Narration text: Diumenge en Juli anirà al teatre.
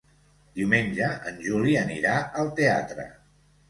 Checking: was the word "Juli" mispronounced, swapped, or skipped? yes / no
no